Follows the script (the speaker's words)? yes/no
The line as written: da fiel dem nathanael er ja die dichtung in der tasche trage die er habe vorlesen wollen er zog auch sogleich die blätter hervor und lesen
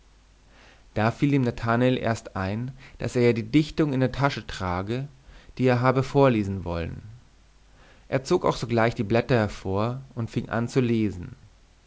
no